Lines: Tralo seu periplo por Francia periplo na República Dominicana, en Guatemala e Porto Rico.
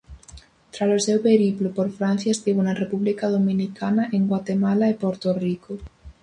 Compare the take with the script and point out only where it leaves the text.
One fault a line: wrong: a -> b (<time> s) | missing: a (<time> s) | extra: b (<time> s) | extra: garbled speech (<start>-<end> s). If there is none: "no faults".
wrong: periplo -> estivo (2.3 s)